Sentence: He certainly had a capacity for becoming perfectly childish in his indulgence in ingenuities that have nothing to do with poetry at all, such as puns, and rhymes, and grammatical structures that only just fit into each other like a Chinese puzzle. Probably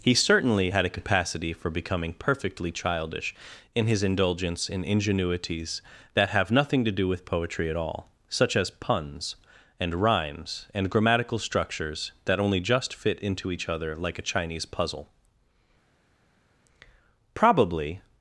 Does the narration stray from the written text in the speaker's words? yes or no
no